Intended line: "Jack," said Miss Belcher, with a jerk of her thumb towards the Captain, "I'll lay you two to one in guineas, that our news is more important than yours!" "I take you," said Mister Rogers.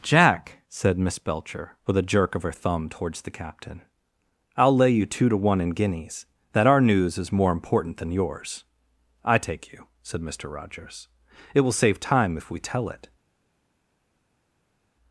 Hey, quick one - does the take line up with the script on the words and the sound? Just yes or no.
no